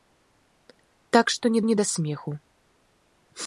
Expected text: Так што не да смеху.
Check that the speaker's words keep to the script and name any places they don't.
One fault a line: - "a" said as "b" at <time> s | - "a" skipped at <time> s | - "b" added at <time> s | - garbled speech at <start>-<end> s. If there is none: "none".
- "не" added at 1.6 s